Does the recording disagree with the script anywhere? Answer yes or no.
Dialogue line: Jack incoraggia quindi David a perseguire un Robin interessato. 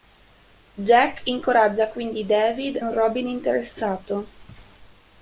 yes